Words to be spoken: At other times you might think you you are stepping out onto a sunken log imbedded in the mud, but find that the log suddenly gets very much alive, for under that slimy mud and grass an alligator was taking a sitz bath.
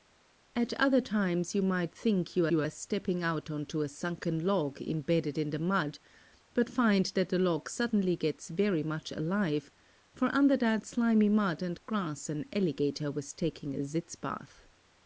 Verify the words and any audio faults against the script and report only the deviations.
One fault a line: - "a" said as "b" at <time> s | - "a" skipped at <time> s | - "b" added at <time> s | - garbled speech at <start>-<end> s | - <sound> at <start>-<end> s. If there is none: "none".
none